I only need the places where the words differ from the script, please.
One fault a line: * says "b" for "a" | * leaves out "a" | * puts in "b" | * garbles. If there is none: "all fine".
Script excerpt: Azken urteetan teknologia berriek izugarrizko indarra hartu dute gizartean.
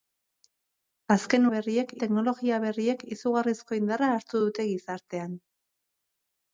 * says "berriek" for "urteetan"